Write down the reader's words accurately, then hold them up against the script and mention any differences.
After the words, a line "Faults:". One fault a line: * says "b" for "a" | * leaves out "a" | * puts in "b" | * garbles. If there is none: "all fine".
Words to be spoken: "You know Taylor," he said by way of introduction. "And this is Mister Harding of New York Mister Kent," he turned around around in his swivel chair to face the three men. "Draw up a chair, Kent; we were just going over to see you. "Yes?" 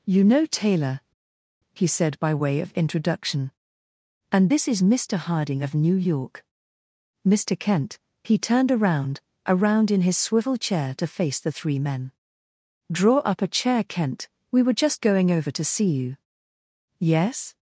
"You know Taylor," he said by way of introduction. "And this is Mister Harding of New York Mister Kent," he turned around around in his swivel chair to face the three men. "Draw up a chair, Kent; we were just going over to see you. "Yes?"
Faults:
all fine